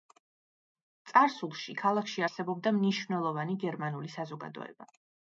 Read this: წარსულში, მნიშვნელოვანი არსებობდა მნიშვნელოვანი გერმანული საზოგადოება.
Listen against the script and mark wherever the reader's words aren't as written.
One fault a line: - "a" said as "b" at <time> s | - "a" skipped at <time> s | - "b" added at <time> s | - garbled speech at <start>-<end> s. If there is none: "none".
- "მნიშვნელოვანი" said as "ქალაქში" at 1.8 s